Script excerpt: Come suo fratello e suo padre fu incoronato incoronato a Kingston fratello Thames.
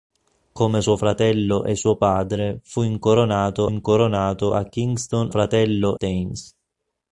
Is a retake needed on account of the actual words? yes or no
no